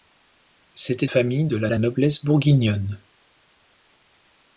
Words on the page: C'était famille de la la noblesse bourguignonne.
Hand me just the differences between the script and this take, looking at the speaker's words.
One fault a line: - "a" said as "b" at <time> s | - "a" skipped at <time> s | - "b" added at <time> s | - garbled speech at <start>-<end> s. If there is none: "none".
none